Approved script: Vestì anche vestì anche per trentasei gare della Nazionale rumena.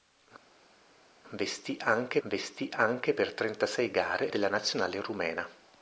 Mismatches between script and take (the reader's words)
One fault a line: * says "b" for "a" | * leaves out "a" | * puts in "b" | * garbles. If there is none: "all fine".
all fine